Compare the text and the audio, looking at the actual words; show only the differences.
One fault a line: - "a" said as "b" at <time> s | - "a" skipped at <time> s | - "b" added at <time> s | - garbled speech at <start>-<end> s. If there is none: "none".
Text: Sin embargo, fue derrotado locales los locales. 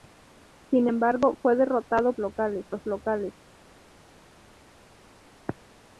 none